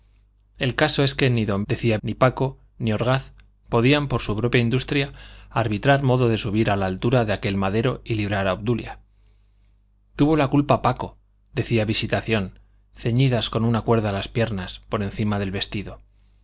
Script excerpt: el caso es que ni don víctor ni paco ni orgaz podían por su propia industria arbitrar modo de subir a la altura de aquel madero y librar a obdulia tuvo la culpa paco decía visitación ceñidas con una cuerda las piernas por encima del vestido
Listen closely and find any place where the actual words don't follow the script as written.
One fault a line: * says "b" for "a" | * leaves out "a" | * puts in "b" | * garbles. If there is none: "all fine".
* says "decía" for "víctor"